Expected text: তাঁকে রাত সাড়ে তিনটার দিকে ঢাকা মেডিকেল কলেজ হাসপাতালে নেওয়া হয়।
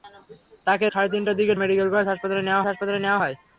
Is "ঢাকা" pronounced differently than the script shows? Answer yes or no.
yes